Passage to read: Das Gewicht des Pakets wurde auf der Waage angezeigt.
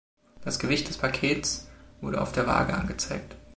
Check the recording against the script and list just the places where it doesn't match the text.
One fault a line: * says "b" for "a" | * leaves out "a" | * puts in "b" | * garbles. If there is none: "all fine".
all fine